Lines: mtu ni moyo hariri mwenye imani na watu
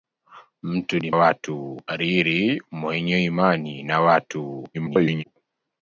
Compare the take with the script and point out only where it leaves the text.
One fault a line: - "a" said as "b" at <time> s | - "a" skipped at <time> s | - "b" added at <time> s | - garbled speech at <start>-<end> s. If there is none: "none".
- "moyo" said as "watu" at 1.1 s
- garbled speech at 4.7-5.2 s